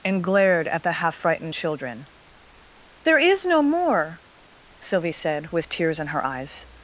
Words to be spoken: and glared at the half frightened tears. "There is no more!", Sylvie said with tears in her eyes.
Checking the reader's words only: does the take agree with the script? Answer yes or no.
no